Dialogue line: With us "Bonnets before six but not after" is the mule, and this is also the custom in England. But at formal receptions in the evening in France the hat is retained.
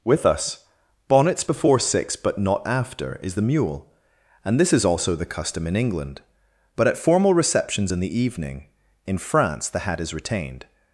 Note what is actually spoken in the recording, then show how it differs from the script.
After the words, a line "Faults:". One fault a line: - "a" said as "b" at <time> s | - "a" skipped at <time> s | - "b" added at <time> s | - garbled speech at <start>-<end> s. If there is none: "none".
With us "Bonnets before six but not after" is the mule, and this is also the custom in England. But at formal receptions in the evening in France the hat is retained.
Faults:
none